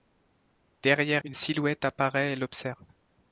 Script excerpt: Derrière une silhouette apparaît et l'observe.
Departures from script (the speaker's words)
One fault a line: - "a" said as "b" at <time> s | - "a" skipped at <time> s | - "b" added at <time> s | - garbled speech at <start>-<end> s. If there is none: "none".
none